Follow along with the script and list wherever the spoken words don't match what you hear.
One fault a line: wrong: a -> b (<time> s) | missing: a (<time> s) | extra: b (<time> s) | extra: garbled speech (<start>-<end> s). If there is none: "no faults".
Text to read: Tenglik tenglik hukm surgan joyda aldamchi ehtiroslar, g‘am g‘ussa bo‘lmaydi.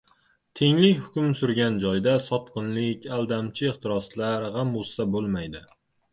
missing: tenglik (0.9 s)
extra: sotqinlik (2.3 s)